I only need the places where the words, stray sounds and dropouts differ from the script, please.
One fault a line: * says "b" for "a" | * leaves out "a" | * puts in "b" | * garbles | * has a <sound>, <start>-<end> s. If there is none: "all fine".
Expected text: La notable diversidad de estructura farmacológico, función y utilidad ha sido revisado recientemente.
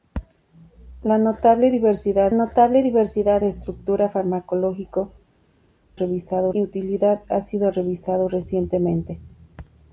* puts in "notable diversidad"
* says "revisado" for "función"